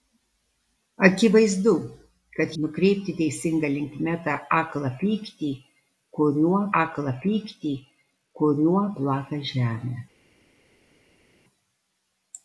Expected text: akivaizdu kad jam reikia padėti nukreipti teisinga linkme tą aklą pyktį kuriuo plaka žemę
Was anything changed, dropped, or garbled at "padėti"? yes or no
yes